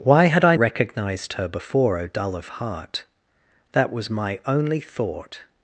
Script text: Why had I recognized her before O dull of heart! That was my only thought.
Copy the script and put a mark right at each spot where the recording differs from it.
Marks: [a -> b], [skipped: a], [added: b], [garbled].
Why had I recognized her before O dull of heart! That was my only thought.